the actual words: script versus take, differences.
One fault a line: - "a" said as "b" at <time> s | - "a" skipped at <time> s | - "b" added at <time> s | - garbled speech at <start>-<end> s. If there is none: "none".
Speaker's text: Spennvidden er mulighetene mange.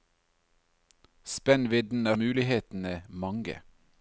none